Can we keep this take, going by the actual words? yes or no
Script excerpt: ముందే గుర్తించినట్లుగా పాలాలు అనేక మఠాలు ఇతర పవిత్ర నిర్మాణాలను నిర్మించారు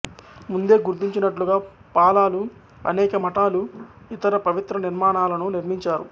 yes